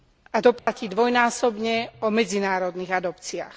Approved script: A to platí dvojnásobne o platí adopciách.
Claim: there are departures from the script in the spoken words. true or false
true